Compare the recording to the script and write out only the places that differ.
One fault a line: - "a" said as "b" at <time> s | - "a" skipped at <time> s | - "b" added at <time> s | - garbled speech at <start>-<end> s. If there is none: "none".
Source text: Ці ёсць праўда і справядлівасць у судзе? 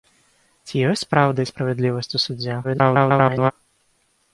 - garbled speech at 2.6-3.5 s